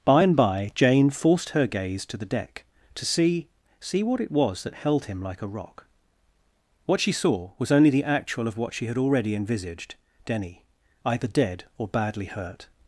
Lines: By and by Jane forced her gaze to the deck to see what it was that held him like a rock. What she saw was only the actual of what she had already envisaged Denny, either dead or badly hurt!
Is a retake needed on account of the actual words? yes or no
yes